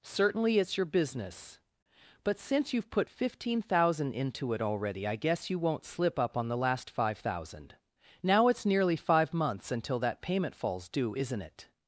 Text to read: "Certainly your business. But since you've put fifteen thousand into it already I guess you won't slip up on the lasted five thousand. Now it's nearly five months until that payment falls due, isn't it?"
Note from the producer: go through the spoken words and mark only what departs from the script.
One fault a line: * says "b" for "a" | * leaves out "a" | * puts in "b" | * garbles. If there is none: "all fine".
* puts in "it's"
* says "last" for "lasted"